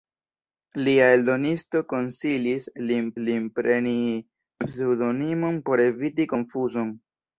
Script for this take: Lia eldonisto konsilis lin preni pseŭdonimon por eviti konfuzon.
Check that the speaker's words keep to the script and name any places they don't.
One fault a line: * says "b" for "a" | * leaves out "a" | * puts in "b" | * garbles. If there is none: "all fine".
* puts in "lin"